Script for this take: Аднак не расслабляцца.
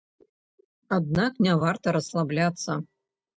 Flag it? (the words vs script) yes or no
yes